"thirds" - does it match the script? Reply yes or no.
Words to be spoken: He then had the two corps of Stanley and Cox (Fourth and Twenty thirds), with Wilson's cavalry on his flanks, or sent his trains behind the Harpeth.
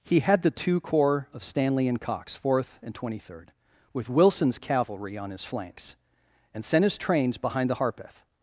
no